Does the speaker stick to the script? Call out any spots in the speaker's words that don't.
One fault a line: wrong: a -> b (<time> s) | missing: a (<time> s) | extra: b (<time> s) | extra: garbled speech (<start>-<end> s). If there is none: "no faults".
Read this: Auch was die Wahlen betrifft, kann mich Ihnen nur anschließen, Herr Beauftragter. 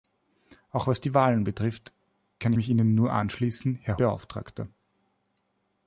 no faults